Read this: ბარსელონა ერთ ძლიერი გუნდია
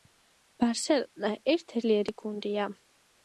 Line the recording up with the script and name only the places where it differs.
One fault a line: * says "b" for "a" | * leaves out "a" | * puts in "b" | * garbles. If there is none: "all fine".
all fine